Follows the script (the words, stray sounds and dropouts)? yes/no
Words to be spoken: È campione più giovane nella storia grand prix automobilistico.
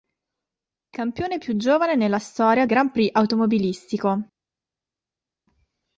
yes